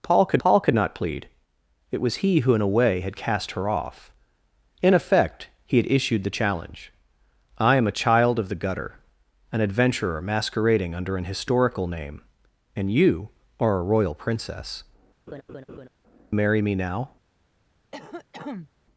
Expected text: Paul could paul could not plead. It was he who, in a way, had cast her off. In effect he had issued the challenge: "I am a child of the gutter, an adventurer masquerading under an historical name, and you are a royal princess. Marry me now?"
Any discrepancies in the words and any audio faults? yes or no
yes